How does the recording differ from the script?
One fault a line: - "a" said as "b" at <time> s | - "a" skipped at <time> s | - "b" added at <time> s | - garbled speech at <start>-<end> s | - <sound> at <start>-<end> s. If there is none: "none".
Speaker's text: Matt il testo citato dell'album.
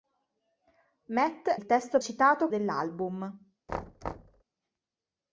- thud at 3.7-4.4 s